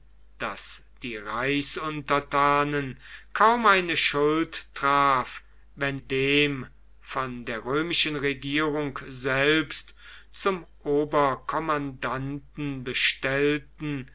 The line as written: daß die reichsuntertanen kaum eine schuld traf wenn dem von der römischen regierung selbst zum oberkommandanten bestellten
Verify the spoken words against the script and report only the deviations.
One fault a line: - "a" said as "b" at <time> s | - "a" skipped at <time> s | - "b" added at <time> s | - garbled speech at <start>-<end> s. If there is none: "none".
none